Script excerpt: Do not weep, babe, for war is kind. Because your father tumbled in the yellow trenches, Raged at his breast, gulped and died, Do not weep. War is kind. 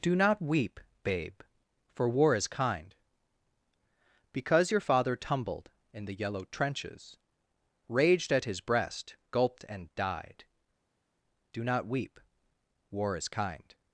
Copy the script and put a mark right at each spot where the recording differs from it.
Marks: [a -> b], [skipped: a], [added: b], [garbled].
Do not weep, babe, for war is kind. Because your father tumbled in the yellow trenches, Raged at his breast, gulped and died, Do not weep. War is kind.